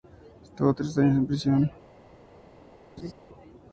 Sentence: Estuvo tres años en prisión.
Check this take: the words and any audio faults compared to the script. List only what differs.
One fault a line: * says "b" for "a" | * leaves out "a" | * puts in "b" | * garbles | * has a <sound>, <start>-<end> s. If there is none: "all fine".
* has a laugh, 3.0-3.1 s